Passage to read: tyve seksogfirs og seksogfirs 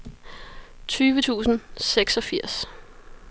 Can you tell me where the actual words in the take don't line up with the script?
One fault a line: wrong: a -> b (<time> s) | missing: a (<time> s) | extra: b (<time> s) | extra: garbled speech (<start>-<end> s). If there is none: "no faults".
wrong: seksogfirs -> tusind (1.2 s)